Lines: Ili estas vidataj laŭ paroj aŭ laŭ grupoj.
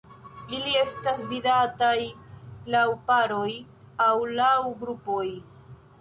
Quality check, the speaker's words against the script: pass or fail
pass